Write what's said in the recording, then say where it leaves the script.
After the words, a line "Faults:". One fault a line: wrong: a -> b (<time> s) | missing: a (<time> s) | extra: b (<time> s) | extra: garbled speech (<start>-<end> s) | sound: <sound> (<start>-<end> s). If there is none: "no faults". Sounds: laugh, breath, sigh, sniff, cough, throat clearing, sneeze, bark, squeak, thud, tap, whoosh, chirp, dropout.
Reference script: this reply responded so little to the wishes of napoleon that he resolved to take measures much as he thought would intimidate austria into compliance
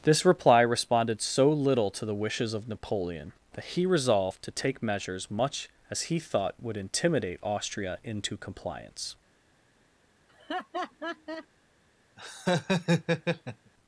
this reply responded so little to the wishes of napoleon that he resolved to take measures much as he thought would intimidate austria into compliance
Faults:
sound: laugh (10.3-11.5 s)
sound: laugh (12.2-13.7 s)